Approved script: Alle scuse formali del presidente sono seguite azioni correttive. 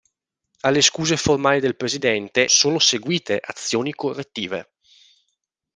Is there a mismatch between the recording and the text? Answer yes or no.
no